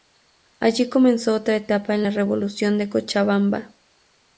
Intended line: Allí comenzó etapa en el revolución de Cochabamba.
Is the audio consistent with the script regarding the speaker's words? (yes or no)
no